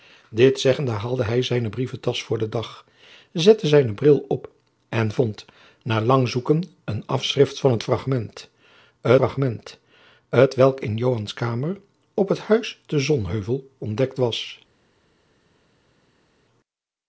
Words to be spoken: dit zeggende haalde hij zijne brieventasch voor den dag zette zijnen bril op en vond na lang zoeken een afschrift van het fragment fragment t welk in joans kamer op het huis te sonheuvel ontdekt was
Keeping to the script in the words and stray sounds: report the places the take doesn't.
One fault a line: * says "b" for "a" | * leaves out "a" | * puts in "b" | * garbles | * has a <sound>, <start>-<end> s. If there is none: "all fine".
all fine